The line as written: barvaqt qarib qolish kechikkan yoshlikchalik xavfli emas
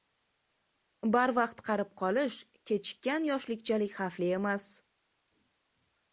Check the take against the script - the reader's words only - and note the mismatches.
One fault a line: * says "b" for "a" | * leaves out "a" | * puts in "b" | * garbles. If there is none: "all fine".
all fine